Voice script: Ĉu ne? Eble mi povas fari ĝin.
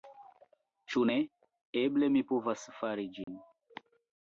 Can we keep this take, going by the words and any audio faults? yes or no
no